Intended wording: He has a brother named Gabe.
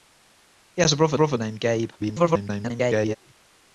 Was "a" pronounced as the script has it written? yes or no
yes